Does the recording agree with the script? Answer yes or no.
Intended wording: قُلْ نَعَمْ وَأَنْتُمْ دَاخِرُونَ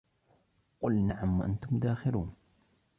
yes